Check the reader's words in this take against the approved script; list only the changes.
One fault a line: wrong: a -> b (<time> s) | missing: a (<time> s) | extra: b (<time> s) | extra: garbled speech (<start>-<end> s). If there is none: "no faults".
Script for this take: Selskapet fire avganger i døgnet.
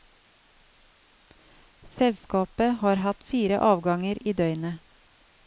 extra: har hatt (2.8 s)